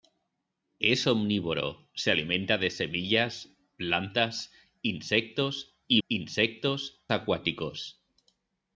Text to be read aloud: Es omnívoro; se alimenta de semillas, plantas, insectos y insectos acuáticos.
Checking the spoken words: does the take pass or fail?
pass